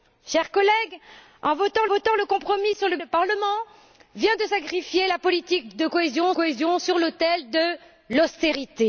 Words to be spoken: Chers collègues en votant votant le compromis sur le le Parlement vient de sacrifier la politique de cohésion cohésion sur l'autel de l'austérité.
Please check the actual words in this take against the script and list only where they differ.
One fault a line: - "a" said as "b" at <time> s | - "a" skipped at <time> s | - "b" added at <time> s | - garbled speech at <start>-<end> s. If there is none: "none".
none